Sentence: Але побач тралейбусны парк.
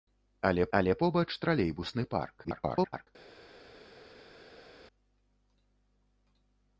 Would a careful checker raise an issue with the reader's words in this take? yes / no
yes